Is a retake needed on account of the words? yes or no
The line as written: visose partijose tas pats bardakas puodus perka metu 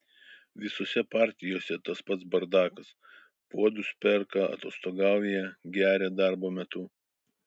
yes